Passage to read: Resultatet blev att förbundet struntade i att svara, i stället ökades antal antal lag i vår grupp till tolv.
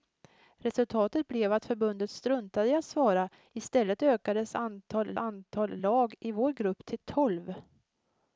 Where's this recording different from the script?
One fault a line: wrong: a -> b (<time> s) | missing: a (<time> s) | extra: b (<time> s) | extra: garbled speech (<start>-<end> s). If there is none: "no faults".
no faults